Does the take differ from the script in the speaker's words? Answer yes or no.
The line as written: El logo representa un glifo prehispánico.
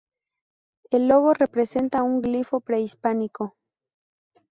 no